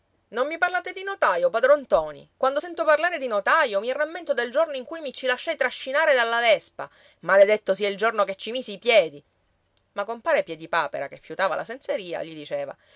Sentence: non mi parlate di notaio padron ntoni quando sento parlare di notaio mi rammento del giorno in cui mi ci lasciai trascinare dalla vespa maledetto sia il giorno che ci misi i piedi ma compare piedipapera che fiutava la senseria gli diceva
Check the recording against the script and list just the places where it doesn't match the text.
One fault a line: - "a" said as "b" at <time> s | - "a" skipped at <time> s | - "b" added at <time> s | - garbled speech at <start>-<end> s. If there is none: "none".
none